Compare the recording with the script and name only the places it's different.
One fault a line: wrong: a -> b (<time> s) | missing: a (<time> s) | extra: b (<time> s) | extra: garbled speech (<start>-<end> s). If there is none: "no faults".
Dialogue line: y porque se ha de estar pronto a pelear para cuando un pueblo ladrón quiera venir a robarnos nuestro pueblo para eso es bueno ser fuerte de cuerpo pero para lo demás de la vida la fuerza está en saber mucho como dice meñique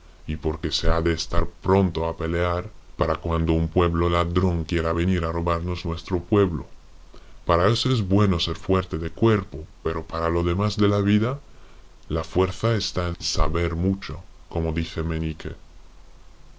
no faults